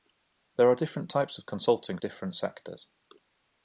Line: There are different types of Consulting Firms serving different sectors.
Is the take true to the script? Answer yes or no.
no